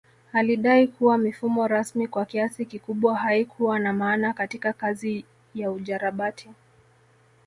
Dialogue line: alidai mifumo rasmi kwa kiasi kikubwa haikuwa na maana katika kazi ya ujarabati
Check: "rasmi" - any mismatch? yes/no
no